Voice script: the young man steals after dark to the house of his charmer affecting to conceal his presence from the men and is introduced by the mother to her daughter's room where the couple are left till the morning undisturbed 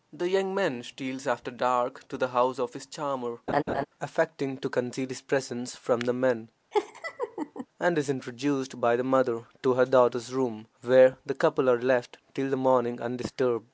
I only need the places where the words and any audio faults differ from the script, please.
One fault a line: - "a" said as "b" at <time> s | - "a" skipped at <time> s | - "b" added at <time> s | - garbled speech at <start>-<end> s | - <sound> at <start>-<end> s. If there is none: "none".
- laugh at 3.5-3.9 s
- laugh at 6.7-7.7 s